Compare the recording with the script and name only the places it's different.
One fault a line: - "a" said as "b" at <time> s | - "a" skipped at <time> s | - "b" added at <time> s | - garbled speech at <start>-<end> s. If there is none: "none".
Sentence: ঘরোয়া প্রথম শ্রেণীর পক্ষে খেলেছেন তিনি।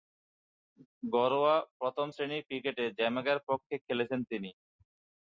- "ক্রিকেটে জ্যামাইকার" added at 2.5 s